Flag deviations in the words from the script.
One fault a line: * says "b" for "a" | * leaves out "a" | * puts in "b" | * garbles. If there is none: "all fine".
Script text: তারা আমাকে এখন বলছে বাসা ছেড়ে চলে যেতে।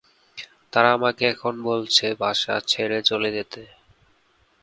all fine